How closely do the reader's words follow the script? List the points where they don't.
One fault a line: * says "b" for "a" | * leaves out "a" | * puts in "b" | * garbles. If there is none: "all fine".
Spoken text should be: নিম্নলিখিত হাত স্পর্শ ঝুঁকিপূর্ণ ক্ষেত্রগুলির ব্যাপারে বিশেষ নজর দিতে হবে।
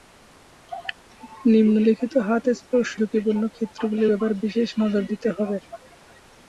all fine